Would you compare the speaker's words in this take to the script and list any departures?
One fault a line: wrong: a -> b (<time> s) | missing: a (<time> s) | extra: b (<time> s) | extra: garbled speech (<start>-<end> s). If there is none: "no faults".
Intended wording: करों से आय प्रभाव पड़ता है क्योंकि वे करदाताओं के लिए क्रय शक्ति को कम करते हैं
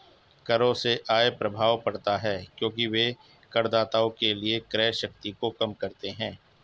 no faults